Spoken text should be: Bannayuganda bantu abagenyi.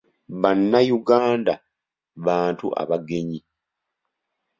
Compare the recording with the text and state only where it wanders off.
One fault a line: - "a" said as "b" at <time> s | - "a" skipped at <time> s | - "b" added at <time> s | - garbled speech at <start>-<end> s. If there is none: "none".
none